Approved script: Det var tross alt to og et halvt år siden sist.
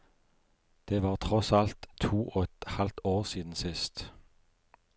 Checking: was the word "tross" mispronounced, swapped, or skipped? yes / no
no